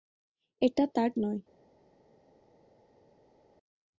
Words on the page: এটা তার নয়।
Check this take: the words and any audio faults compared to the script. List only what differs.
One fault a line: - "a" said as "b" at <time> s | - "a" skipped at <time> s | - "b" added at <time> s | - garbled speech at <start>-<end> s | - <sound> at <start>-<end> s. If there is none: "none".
none